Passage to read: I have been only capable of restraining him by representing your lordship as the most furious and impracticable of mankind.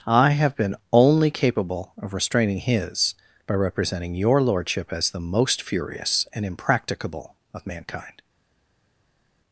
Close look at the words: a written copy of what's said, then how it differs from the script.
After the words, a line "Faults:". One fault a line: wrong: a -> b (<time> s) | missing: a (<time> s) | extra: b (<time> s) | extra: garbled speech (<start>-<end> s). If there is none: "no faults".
I have been only capable of restraining his by representing your lordship as the most furious and impracticable of mankind.
Faults:
wrong: him -> his (2.6 s)